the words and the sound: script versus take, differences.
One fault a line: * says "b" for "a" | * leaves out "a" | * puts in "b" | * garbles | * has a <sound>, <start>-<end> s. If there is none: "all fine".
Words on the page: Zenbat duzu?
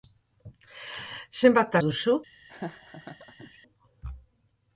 * has a laugh, 2.5-3.6 s